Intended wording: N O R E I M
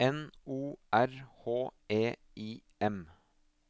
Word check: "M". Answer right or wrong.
right